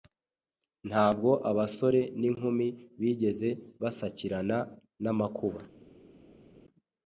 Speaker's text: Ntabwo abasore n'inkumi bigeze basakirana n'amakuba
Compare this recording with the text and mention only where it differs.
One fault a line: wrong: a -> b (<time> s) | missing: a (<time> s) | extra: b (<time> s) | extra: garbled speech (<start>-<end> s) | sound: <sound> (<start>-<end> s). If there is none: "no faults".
no faults